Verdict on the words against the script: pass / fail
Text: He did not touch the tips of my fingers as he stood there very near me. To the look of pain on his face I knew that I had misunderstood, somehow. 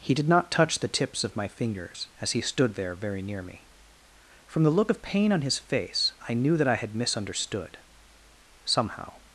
fail